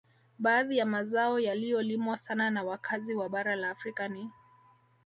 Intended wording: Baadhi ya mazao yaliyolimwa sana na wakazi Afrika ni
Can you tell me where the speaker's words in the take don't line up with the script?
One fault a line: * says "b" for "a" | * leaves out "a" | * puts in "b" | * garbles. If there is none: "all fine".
* puts in "wa bara la"